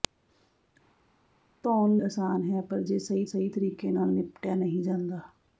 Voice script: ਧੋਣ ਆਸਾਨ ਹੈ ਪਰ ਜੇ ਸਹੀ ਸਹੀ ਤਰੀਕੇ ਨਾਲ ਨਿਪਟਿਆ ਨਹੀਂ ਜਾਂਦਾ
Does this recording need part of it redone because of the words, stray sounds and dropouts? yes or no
no